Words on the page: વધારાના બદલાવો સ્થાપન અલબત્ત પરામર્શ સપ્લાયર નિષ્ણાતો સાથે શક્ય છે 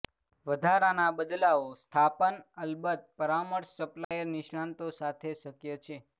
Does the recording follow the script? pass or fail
pass